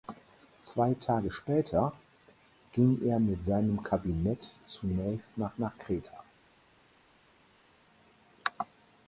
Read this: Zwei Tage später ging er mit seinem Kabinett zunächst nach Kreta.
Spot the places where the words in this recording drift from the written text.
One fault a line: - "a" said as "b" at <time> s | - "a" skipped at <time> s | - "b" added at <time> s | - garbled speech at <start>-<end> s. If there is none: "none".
- "nach" added at 5.6 s